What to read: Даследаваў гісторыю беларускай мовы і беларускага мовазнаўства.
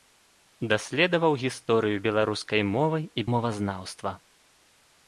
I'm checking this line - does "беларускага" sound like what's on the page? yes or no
no